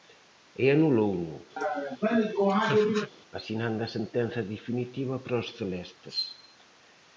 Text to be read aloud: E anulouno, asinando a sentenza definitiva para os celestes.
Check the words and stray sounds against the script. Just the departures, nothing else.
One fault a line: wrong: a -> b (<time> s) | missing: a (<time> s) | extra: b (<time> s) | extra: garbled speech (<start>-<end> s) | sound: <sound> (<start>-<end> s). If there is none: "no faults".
sound: laugh (1.6-3.1 s)